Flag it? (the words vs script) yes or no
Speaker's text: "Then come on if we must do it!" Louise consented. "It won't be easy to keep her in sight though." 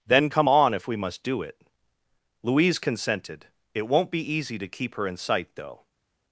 no